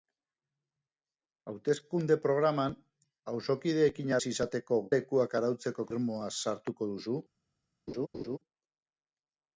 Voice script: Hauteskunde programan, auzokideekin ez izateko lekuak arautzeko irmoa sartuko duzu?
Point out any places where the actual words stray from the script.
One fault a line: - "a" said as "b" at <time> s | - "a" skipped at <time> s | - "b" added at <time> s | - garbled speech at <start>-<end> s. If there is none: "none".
none